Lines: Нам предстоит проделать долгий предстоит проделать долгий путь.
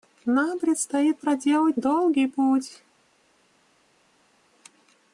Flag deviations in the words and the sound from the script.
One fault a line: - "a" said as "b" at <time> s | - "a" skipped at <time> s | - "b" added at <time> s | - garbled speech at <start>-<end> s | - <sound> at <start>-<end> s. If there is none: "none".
- "предстоит проделать долгий" skipped at 2.3 s